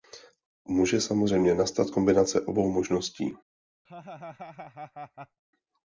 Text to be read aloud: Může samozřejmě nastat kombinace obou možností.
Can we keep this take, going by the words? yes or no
yes